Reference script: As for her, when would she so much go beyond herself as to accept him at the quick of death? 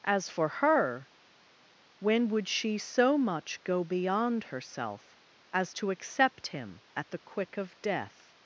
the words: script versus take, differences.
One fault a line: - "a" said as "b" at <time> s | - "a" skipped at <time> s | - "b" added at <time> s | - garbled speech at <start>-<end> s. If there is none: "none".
none